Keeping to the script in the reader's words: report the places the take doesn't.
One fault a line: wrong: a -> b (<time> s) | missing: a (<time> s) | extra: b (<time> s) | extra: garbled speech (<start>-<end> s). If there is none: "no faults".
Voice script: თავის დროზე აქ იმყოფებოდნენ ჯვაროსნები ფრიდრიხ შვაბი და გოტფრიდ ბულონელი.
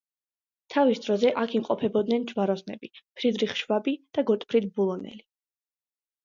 no faults